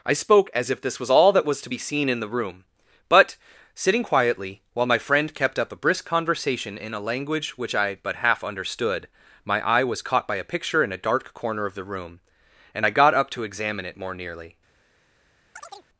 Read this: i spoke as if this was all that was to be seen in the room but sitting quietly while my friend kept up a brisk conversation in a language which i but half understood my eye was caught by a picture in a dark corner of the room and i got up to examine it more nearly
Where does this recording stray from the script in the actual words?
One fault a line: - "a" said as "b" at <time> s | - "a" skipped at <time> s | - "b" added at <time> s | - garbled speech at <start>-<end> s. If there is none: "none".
none